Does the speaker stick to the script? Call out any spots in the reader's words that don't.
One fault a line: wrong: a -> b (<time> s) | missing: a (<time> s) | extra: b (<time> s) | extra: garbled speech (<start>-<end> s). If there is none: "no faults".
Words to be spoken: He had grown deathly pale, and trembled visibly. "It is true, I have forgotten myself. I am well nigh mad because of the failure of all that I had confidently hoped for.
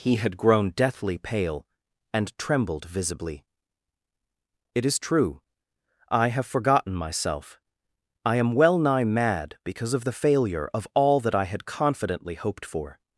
no faults